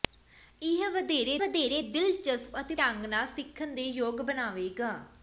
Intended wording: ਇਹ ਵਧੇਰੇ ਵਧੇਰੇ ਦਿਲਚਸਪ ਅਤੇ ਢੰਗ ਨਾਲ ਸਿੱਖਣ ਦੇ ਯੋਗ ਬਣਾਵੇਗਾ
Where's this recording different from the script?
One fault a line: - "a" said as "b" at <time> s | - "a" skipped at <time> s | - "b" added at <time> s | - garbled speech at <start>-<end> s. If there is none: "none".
none